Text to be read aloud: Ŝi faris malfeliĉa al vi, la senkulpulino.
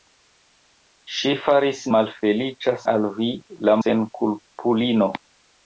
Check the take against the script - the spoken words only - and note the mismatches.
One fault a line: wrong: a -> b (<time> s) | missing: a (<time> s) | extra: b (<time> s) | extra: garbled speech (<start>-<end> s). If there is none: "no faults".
no faults